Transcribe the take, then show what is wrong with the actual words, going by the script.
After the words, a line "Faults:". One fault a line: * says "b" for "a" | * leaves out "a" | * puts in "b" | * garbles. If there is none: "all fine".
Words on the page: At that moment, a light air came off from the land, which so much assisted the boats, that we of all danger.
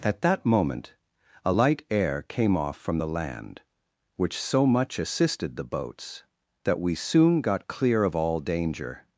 At that moment, a light air came off from the land, which so much assisted the boats, that we soon got clear of all danger.
Faults:
* puts in "soon got clear"